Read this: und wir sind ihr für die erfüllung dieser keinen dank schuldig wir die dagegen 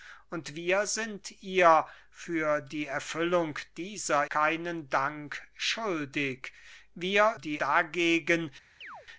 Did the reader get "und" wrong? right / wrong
right